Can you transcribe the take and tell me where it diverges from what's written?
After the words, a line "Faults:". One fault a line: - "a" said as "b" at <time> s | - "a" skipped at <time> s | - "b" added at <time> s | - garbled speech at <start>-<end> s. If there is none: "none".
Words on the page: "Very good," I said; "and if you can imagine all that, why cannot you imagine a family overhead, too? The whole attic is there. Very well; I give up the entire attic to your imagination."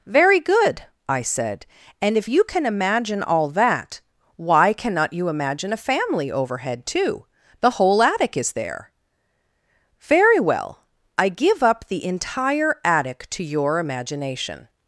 "Very good," I said; "and if you can imagine all that, why cannot you imagine a family overhead, too? The whole attic is there. Very well; I give up the entire attic to your imagination."
Faults:
none